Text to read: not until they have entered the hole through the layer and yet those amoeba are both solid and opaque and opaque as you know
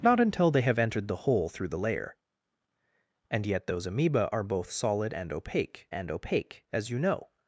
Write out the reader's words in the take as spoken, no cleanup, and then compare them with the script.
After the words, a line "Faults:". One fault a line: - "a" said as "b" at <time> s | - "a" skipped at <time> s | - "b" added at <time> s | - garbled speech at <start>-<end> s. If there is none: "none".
not until they have entered the hole through the layer and yet those amoeba are both solid and opaque and opaque as you know
Faults:
none